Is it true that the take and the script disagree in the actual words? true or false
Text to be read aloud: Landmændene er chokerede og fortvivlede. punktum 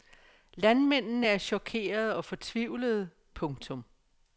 false